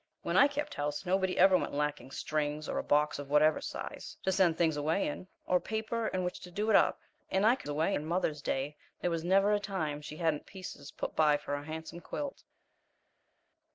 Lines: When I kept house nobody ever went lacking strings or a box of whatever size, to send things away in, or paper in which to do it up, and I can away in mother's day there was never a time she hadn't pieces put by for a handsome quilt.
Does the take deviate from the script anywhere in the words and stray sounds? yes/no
no